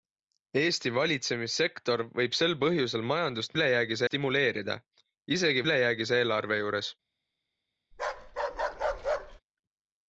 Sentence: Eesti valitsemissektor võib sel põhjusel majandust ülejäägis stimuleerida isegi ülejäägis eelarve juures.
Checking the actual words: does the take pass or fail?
pass